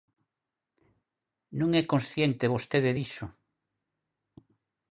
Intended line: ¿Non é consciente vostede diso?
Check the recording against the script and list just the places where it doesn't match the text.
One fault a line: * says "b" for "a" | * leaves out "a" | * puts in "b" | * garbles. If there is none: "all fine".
all fine